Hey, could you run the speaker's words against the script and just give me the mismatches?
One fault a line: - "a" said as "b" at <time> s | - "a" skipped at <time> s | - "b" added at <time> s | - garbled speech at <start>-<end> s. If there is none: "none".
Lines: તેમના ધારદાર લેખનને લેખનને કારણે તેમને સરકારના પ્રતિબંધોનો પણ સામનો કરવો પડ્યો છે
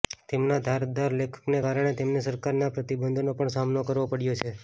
- "લેખનને" skipped at 1.6 s